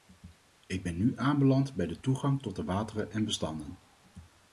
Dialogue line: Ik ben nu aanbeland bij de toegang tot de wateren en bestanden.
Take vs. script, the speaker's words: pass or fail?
pass